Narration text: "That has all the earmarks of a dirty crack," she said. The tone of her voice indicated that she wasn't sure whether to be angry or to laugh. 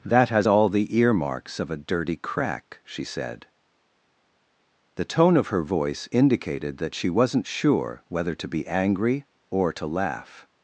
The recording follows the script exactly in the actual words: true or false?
true